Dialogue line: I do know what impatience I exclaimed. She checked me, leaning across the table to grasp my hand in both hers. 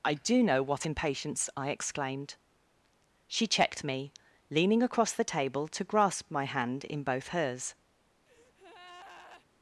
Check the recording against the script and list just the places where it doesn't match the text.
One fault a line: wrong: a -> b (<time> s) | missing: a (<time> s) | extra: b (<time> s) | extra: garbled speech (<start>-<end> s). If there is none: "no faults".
no faults